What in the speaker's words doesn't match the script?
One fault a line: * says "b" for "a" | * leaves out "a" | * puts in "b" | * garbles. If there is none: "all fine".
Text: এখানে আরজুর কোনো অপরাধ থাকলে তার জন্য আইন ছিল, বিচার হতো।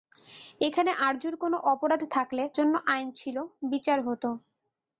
* leaves out "তার"